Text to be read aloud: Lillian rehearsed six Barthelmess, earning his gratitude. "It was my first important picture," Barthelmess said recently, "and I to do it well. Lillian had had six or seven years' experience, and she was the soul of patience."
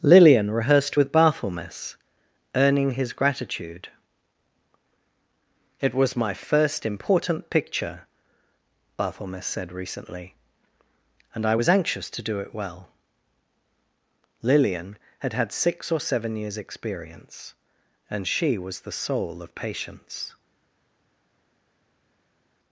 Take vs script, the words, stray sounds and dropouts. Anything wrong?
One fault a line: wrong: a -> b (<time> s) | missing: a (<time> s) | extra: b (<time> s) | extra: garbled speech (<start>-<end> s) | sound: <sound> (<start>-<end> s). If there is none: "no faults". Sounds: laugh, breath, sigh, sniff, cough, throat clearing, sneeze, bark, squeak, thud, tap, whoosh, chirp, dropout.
wrong: six -> with (0.9 s)
extra: was anxious (11.5 s)